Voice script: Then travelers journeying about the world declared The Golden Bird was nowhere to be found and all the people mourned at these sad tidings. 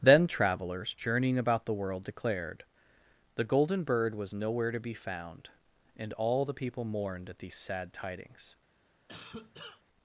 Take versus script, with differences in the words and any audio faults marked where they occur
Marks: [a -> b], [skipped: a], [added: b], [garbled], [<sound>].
Then travelers journeying about the world declared The Golden Bird was nowhere to be found and all the people mourned at these sad tidings. [cough]